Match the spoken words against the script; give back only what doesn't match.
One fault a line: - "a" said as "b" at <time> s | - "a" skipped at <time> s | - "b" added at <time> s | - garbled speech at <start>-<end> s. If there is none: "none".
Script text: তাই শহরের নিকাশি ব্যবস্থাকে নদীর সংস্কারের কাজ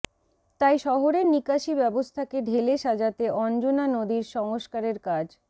- "ঢেলে সাজাতে অঞ্জনা" added at 2.4 s